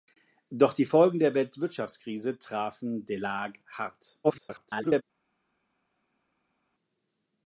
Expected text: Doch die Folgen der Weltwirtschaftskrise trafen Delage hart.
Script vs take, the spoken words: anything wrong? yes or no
yes